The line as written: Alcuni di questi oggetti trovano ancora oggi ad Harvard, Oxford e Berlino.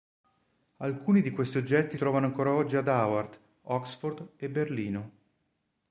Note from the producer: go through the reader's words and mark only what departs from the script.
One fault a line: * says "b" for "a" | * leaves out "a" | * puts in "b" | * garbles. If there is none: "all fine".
all fine